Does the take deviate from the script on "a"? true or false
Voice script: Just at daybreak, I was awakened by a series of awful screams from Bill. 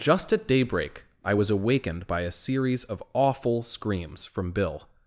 false